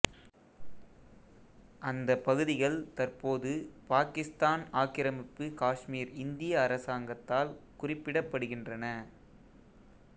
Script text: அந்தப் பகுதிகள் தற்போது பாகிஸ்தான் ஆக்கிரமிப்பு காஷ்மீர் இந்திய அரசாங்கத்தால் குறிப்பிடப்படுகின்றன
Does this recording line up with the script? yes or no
yes